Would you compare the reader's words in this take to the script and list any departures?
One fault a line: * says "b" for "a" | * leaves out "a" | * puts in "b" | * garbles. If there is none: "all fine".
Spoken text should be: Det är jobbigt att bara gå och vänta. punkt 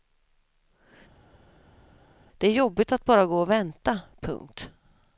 all fine